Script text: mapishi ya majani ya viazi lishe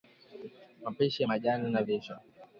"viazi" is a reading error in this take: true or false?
true